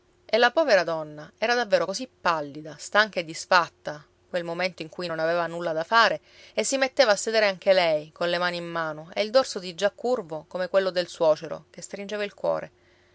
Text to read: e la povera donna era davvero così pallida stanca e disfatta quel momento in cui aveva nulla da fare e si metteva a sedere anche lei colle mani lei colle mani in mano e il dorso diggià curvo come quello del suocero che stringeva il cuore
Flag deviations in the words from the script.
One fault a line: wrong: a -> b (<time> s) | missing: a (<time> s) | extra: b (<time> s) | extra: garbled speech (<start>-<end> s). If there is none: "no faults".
extra: non (5.1 s)
missing: lei colle mani (8.6 s)